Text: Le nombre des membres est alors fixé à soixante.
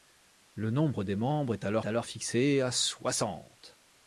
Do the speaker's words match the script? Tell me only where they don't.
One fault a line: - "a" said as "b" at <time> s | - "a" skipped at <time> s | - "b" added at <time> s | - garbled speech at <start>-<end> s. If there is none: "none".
- "alors" added at 1.8 s